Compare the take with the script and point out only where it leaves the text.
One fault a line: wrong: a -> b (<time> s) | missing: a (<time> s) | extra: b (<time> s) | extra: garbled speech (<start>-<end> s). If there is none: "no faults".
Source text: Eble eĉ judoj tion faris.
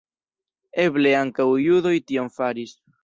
wrong: eĉ -> ankaŭ (1.2 s)